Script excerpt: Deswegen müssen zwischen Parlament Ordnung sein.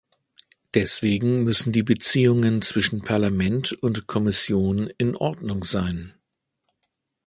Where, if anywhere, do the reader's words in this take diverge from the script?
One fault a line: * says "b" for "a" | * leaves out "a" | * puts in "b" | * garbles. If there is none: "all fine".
* puts in "die Beziehungen"
* puts in "und Kommission in"